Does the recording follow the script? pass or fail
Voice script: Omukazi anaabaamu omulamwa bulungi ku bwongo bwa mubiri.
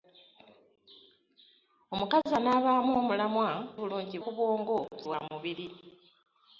pass